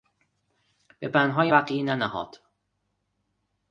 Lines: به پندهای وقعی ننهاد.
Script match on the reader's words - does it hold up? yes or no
yes